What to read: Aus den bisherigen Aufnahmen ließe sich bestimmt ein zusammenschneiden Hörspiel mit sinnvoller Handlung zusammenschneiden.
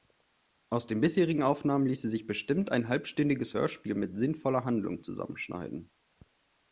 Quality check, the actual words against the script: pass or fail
fail